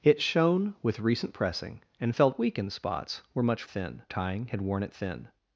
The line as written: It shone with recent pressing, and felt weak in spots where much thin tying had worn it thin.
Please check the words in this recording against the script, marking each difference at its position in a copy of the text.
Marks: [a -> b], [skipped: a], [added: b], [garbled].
It shone with recent pressing, and felt weak in spots where much thin tying had worn it thin.